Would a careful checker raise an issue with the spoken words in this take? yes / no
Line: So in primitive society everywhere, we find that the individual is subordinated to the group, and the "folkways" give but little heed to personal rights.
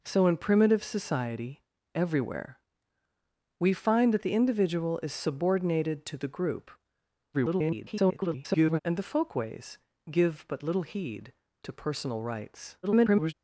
yes